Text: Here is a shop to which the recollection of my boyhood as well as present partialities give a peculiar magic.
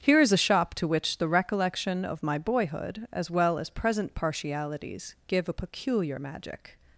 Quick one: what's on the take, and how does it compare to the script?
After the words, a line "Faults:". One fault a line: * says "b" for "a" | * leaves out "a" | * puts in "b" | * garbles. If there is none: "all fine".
Here is a shop to which the recollection of my boyhood as well as present partialities give a peculiar magic.
Faults:
all fine